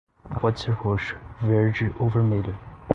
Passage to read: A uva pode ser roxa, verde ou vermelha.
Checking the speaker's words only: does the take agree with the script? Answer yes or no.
no